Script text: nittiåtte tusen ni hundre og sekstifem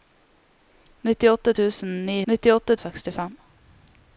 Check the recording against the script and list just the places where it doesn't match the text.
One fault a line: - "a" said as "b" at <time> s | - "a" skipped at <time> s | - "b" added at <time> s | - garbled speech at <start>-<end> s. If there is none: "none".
- "hundre" said as "nittiåtte" at 2.3 s